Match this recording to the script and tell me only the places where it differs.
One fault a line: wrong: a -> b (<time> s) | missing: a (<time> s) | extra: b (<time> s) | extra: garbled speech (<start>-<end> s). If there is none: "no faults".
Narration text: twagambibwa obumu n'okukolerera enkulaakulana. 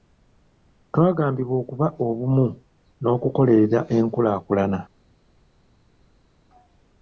extra: okuba (1.6 s)